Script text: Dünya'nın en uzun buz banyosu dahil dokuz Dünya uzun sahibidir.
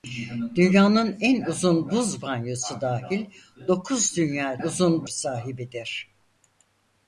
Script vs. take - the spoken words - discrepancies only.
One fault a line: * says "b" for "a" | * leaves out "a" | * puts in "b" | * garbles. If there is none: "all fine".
all fine